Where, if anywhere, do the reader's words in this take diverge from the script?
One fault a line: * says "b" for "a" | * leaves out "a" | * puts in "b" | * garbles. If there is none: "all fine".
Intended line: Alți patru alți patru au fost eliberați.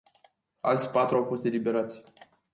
* leaves out "alți patru"